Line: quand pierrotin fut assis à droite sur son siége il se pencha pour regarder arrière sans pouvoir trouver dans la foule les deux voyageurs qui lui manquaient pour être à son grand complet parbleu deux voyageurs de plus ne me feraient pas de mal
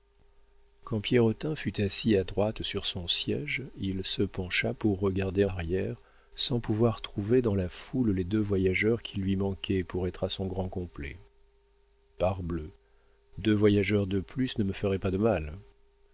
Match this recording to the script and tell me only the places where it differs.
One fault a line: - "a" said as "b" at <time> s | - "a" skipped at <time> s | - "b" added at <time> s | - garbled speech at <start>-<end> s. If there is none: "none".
none